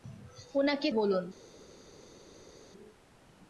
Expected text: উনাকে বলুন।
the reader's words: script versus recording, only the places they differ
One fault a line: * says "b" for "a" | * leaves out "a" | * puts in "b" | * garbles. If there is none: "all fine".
all fine